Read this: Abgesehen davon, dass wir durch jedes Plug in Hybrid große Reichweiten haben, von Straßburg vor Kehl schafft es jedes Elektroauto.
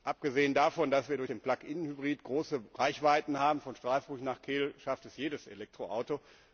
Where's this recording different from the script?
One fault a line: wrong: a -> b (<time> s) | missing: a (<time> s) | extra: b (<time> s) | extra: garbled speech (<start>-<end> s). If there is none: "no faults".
wrong: jedes -> den (1.3 s)
wrong: vor -> nach (4.2 s)